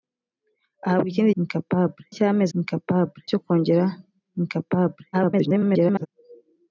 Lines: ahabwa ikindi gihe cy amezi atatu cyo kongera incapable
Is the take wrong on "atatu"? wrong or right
wrong